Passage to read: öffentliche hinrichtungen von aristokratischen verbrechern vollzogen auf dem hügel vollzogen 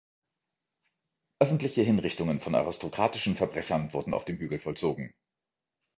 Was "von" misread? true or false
false